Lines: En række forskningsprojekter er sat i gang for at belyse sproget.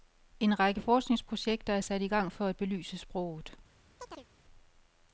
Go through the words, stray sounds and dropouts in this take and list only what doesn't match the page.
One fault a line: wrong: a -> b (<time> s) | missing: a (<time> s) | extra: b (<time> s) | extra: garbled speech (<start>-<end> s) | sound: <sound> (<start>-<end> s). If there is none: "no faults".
sound: chirp (4.0-4.3 s)